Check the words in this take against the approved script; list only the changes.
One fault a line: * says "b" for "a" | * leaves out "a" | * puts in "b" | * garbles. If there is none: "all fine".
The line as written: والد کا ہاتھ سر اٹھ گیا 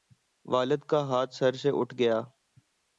* puts in "سے"